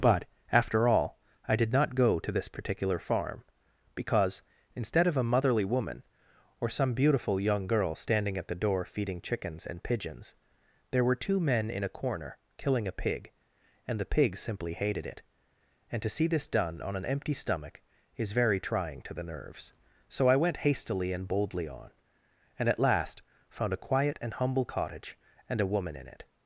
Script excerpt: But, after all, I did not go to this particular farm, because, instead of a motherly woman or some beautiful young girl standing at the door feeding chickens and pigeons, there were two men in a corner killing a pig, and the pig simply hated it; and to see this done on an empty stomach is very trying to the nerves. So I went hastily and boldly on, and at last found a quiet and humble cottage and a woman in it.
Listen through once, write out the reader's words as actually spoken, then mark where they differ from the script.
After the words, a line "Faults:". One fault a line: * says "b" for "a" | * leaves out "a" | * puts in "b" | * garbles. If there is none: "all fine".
But, after all, I did not go to this particular farm, because, instead of a motherly woman or some beautiful young girl standing at the door feeding chickens and pigeons, there were two men in a corner killing a pig, and the pig simply hated it; and to see this done on an empty stomach is very trying to the nerves. So I went hastily and boldly on, and at last found a quiet and humble cottage and a woman in it.
Faults:
all fine